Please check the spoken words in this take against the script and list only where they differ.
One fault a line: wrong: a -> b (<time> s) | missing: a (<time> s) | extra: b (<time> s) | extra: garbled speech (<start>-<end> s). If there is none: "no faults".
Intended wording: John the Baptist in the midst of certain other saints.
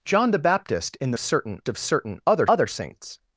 wrong: midst -> certain (1.2 s)
extra: other (2.5 s)